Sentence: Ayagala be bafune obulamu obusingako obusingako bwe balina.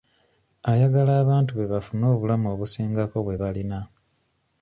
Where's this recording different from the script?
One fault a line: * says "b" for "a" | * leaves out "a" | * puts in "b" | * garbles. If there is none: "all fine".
* puts in "abantu"
* leaves out "obusingako"